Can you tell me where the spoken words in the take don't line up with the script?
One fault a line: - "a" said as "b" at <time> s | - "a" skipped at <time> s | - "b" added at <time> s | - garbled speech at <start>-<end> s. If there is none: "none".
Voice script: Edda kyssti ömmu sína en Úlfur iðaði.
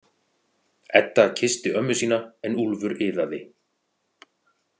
none